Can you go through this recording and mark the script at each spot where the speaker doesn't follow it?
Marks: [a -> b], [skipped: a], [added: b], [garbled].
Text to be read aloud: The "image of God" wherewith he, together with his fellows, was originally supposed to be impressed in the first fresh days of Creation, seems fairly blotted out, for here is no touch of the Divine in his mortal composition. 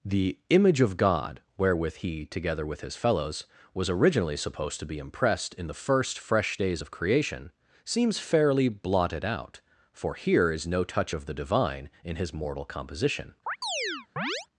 The "image of God" wherewith he, together with his fellows, was originally supposed to be impressed in the first fresh days of Creation, seems fairly blotted out, for here is no touch of the Divine in his mortal composition.